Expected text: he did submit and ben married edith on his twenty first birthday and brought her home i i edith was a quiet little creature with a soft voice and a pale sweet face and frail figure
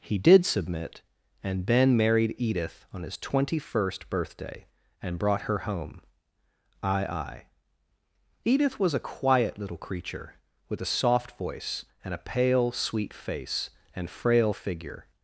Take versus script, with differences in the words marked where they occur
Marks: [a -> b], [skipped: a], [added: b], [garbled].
he did submit and ben married edith on his twenty first birthday and brought her home i i edith was a quiet little creature with a soft voice and a pale sweet face and frail figure